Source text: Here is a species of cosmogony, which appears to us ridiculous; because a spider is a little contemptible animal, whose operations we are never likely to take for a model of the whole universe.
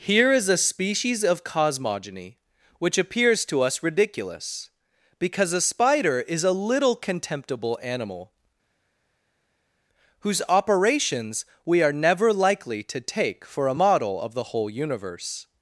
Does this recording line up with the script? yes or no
yes